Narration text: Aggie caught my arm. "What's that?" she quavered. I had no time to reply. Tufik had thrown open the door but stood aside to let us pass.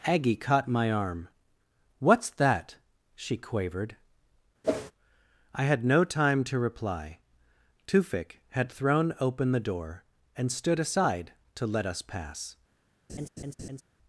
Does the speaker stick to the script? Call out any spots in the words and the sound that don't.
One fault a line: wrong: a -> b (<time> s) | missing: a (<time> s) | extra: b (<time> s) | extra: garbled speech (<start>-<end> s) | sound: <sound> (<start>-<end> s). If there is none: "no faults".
sound: whoosh (4.6-4.9 s)
wrong: but -> and (10.4 s)
sound: laugh (13.1-13.8 s)